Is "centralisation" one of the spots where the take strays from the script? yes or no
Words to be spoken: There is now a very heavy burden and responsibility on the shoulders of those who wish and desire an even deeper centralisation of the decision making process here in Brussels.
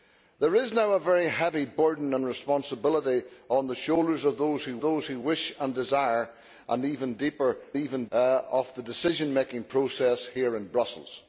yes